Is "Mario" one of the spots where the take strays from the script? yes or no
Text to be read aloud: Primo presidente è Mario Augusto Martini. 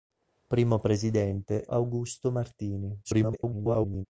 yes